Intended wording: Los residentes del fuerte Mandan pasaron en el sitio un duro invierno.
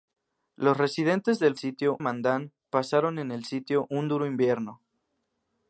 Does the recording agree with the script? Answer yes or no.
no